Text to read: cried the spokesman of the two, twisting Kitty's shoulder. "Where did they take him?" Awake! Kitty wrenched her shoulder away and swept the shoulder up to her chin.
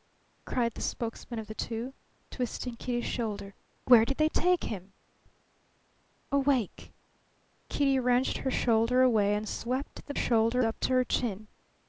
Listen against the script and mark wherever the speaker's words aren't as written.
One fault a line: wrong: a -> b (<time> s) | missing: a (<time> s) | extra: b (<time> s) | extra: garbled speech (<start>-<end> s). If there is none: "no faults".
no faults